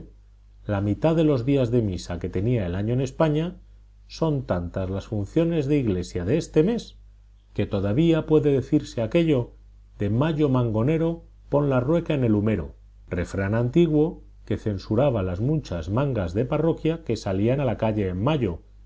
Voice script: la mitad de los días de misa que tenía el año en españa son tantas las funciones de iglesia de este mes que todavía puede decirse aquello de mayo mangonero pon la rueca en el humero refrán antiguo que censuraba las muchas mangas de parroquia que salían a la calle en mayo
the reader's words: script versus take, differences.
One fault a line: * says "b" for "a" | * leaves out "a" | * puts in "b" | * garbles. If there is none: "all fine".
all fine